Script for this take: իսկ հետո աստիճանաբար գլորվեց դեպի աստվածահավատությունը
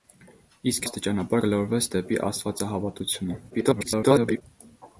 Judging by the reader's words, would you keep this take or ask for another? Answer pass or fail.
fail